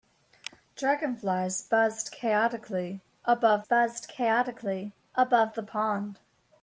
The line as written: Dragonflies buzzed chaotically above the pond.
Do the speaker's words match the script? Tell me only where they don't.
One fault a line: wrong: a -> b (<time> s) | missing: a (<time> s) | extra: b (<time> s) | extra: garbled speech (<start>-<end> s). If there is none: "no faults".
extra: buzzed chaotically above (3.6 s)